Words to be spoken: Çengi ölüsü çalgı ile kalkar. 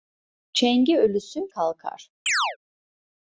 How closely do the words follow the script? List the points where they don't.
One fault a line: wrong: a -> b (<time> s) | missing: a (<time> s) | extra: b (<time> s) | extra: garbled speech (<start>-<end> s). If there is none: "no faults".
missing: çalgı ile (1.5 s)